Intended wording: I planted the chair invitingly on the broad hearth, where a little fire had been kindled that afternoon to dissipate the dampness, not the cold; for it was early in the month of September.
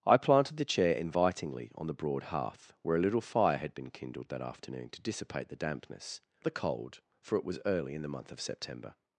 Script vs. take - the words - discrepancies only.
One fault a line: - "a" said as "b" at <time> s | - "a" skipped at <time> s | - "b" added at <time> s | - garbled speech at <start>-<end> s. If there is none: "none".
- "not" skipped at 6.2 s